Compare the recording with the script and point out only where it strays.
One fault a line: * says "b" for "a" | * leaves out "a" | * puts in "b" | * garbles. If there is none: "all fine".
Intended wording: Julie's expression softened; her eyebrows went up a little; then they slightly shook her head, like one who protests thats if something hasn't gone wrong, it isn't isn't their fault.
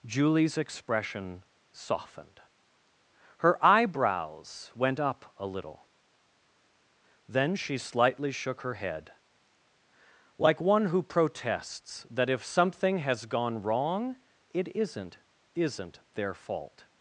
* says "she" for "they"
* says "that" for "thats"
* says "has" for "hasn't"